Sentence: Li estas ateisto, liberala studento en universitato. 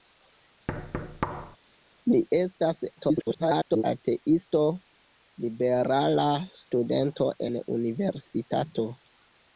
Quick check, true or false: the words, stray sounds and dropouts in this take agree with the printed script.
false